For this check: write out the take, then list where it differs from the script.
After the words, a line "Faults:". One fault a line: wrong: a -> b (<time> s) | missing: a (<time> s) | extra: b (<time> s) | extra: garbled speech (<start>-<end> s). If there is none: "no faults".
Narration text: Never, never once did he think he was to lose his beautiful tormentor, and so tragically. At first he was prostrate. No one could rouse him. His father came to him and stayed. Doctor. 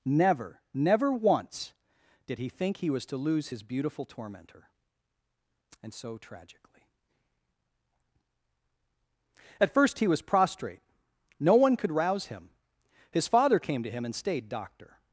Never, never once did he think he was to lose his beautiful tormentor, and so tragically. At first he was prostrate. No one could rouse him. His father came to him and stayed. Doctor.
Faults:
no faults